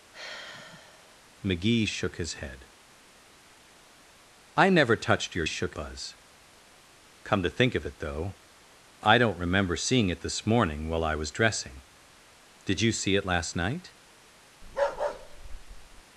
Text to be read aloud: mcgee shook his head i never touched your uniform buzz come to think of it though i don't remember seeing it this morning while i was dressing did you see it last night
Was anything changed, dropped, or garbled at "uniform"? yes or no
yes